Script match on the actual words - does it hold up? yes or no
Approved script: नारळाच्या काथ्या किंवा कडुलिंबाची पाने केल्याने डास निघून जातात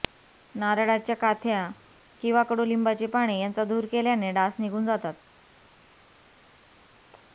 no